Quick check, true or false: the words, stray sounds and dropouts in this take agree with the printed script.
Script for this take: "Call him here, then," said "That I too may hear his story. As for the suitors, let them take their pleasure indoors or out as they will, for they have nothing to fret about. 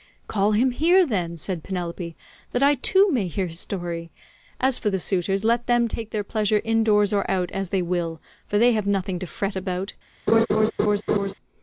false